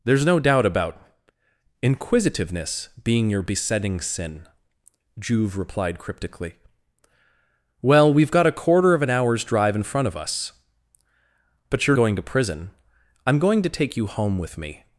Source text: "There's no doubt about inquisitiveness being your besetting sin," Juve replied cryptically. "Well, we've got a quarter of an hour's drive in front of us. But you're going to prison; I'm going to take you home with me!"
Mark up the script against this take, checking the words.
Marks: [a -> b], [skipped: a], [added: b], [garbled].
"There's no doubt about inquisitiveness being your besetting sin," Juve replied cryptically. "Well, we've got a quarter of an hour's drive in front of us. But you're going to prison; I'm going to take you home with me!"